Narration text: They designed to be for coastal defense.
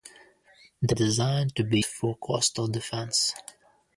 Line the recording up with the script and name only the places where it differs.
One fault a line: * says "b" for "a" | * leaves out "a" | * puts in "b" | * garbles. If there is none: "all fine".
all fine